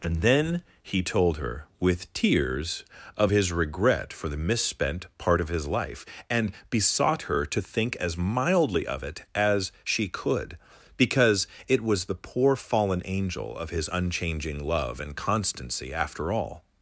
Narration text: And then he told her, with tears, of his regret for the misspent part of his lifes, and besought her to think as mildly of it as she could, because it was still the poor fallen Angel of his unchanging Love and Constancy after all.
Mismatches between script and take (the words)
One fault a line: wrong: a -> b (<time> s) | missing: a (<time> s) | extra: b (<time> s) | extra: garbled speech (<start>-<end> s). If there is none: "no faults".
wrong: lifes -> life (5.7 s)
missing: still (12.1 s)